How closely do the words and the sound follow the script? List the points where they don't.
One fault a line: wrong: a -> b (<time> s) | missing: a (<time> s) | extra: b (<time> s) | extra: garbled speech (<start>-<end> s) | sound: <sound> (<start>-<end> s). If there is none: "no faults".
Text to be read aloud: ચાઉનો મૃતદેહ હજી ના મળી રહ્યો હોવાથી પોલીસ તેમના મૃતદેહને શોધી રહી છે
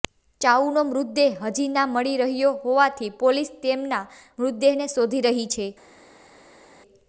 no faults